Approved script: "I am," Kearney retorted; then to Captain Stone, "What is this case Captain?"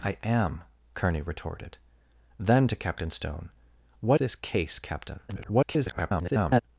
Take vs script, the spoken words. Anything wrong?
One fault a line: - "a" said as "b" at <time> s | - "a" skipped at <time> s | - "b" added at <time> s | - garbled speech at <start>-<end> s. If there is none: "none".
- "is" skipped at 4.2 s
- garbled speech at 5.3-6.6 s